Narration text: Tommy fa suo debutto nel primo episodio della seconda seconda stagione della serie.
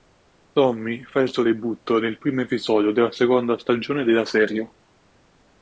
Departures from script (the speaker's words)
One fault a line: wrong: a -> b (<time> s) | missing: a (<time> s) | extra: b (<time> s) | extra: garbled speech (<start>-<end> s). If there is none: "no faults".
extra: il (1.2 s)
missing: seconda (3.6 s)